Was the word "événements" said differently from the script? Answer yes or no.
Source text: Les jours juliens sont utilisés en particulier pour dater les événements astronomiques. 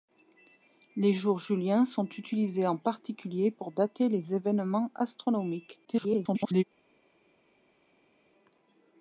no